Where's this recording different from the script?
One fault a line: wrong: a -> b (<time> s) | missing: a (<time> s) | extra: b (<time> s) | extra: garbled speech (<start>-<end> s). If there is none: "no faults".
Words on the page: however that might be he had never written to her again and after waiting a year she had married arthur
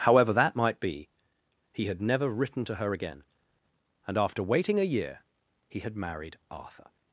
wrong: she -> he (5.7 s)